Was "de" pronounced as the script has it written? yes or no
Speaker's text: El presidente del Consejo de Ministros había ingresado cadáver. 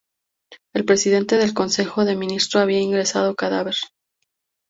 yes